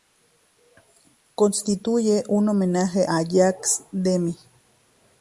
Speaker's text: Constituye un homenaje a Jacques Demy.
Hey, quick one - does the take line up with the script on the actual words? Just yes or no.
yes